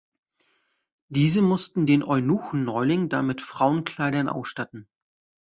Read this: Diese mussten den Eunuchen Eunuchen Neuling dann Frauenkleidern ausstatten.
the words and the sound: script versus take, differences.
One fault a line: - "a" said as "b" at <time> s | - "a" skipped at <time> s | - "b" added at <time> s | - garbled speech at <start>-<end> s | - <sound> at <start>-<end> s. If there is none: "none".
- "Eunuchen" skipped at 2.6 s
- "mit" added at 3.3 s